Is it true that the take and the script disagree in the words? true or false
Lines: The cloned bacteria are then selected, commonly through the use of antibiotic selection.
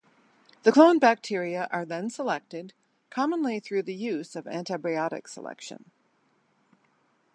false